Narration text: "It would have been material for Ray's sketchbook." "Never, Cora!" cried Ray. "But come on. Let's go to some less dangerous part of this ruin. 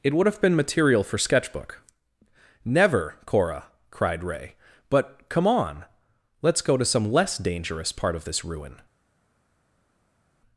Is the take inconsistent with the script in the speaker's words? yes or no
yes